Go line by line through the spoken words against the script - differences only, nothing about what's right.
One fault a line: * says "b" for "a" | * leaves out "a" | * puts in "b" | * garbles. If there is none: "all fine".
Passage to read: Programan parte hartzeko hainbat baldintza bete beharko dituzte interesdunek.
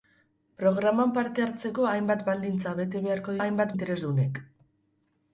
* says "hainbat" for "dituzte"